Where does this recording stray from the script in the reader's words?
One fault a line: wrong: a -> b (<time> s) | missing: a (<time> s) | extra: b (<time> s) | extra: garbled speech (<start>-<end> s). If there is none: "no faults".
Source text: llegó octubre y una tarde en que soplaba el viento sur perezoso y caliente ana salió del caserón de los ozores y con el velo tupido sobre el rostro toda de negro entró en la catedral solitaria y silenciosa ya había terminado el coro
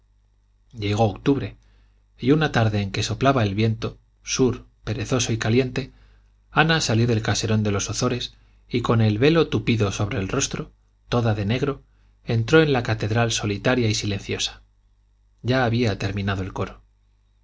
no faults